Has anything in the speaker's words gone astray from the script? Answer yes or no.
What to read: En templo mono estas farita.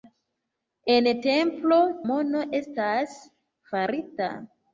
no